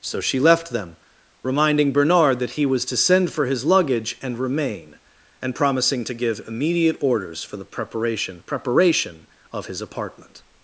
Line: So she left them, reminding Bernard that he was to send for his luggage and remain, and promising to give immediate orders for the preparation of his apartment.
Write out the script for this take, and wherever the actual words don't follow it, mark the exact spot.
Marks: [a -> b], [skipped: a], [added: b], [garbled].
So she left them, reminding Bernard that he was to send for his luggage and remain, and promising to give immediate orders for the preparation [added: preparation] of his apartment.